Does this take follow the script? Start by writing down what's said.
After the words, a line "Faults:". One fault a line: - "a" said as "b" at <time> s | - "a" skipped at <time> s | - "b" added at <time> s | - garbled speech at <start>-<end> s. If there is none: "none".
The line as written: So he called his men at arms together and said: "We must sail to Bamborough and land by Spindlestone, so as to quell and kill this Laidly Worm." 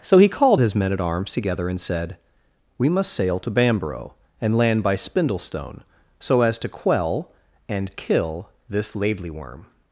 So he called his men at arms together and said: "We must sail to Bamborough and land by Spindlestone, so as to quell and kill this Laidly Worm."
Faults:
none